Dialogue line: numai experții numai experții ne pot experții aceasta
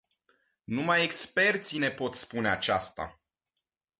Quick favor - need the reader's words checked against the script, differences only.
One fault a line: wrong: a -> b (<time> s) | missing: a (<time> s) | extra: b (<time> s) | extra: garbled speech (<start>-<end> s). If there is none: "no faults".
missing: numai experții (1.8 s)
wrong: experții -> spune (2.1 s)